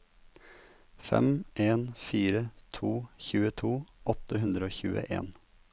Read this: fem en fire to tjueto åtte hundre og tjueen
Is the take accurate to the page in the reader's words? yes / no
yes